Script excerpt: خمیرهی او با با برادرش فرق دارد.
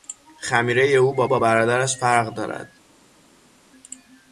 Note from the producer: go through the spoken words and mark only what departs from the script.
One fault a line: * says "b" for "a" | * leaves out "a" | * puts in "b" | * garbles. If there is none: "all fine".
all fine